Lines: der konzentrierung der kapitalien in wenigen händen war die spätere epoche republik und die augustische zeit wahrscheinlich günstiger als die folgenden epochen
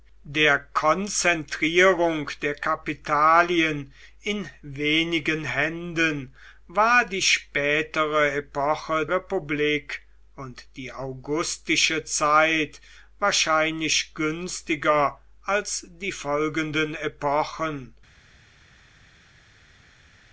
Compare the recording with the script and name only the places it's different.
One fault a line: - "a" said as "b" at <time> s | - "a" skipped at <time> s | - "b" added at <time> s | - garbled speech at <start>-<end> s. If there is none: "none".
none